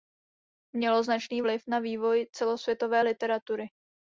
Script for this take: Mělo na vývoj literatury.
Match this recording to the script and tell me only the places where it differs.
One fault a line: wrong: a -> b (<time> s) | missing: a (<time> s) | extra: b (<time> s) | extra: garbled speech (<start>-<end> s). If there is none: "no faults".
extra: značný vliv (1.0 s)
extra: celosvětové (2.3 s)